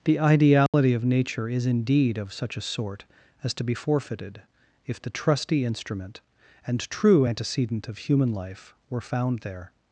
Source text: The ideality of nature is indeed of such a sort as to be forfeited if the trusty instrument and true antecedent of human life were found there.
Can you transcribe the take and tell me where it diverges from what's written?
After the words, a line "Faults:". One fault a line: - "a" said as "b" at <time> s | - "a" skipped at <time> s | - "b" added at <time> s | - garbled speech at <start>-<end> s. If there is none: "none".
The ideality of nature is indeed of such a sort as to be forfeited if the trusty instrument and true antecedent of human life were found there.
Faults:
none